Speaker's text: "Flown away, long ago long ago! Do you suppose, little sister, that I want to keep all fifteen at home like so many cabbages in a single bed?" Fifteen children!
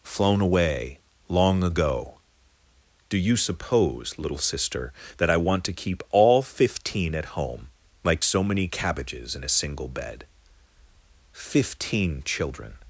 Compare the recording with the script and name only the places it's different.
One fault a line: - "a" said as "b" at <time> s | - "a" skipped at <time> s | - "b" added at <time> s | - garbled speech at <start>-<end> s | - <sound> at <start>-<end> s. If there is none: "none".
- "long ago" skipped at 2.2 s